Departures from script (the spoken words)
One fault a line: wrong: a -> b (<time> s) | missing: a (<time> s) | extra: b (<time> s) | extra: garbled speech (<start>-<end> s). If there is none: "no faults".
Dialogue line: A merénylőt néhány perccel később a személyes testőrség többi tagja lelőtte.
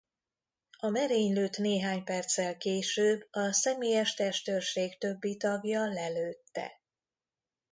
no faults